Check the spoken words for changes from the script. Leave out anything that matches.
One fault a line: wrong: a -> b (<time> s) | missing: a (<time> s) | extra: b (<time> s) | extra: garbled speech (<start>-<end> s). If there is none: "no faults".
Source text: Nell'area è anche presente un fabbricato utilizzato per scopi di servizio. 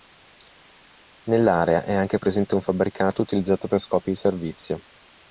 no faults